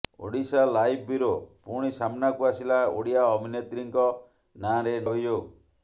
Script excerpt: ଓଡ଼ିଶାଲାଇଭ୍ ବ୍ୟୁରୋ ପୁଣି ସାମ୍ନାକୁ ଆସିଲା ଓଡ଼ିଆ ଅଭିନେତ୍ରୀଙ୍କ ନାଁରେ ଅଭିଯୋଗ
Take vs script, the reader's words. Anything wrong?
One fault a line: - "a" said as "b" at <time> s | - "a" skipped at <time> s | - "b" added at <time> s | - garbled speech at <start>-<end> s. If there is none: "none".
none